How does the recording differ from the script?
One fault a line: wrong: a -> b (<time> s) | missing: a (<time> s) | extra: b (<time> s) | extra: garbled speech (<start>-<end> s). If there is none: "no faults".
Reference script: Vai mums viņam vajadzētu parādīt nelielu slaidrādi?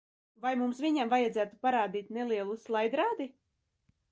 no faults